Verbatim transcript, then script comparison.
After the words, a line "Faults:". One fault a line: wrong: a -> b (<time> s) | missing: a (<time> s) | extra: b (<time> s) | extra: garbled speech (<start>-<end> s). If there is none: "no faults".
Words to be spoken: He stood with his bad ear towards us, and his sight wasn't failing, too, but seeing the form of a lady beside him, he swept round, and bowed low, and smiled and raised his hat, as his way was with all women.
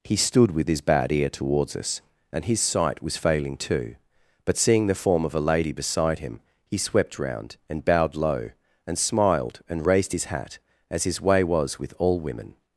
He stood with his bad ear towards us, and his sight was failing, too, but seeing the form of a lady beside him, he swept round, and bowed low, and smiled and raised his hat, as his way was with all women.
Faults:
wrong: wasn't -> was (3.0 s)